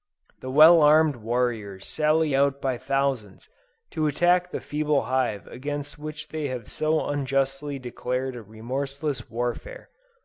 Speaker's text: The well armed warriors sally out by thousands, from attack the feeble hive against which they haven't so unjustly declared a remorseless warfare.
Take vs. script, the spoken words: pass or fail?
fail